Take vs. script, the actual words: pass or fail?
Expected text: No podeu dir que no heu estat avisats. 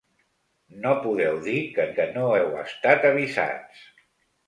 fail